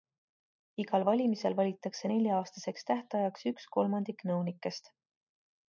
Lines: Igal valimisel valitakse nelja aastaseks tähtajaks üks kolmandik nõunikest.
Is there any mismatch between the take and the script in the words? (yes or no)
no